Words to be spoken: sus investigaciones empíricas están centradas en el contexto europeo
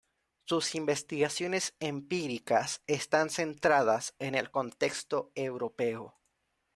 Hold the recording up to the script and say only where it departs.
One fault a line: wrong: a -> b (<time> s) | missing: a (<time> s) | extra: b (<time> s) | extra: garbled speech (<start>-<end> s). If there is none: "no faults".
no faults